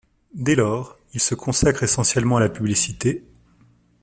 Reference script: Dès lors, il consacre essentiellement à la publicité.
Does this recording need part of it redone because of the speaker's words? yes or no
yes